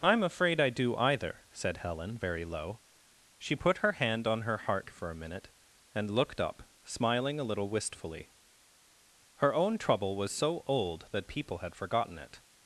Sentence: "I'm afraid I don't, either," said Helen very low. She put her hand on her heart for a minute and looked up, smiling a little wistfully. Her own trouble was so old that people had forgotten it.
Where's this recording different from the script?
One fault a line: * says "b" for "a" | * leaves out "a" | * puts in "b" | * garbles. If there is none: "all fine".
* says "do" for "don't"